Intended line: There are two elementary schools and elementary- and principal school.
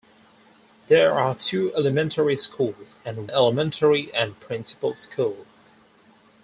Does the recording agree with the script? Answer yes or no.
yes